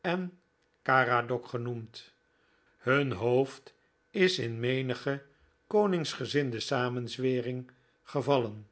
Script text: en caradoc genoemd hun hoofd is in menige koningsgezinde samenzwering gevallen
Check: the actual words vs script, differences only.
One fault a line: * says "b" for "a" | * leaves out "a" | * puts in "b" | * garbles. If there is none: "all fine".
all fine